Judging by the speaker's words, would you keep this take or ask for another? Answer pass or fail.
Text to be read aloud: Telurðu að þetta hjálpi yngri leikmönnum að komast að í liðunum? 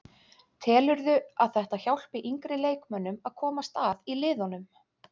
pass